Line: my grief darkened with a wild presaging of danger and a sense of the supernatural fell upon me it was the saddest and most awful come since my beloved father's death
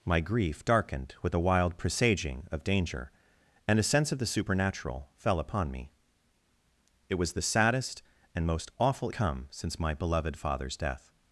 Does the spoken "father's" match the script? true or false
true